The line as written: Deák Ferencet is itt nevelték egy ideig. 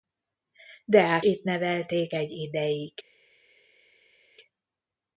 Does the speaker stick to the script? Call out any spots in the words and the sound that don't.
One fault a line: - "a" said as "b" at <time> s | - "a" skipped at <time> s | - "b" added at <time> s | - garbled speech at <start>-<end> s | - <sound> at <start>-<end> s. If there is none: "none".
- "Ferencet is" skipped at 1.2 s